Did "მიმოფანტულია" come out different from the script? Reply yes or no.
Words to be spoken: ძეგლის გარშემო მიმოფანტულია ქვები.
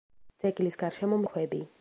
yes